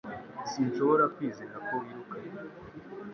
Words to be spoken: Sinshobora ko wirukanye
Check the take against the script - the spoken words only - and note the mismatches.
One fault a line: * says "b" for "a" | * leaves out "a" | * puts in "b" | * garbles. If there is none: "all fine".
* puts in "kwizera"